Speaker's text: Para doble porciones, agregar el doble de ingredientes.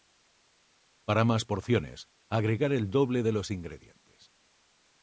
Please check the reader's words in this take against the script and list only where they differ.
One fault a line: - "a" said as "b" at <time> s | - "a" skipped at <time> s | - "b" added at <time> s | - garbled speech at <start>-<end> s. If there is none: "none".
- "doble" said as "más" at 1.2 s
- "los" added at 3.3 s